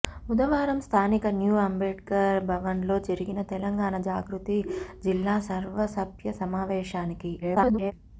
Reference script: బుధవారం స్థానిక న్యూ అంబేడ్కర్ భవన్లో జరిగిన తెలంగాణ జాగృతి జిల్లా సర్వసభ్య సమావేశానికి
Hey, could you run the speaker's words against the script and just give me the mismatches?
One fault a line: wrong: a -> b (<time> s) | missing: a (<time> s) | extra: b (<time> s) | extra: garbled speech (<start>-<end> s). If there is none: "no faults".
extra: garbled speech (7.4-7.9 s)